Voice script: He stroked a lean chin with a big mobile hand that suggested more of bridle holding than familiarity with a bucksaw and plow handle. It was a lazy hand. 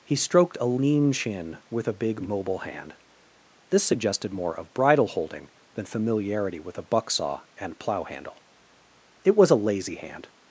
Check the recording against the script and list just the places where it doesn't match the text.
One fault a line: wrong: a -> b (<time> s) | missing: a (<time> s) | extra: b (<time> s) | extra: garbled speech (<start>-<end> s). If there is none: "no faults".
wrong: that -> this (3.7 s)